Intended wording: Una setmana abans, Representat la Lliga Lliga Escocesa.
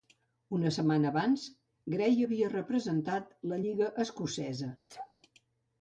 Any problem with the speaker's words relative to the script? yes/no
yes